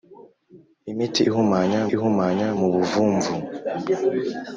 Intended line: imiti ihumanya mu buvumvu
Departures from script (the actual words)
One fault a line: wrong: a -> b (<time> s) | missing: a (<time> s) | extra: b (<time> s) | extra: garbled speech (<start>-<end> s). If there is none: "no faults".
extra: ihumanya (1.9 s)